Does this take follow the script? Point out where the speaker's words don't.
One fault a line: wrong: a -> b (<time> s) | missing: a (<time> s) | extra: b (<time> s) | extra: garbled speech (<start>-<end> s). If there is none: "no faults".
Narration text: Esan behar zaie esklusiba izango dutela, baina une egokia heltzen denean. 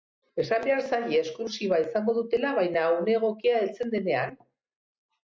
no faults